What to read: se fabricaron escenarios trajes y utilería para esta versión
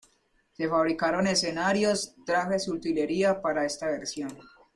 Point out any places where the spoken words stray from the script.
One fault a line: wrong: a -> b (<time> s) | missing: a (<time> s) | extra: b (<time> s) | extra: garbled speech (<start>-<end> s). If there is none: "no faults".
no faults